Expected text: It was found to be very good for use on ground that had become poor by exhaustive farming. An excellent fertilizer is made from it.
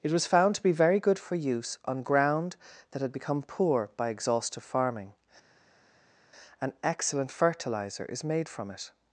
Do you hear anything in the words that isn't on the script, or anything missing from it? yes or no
no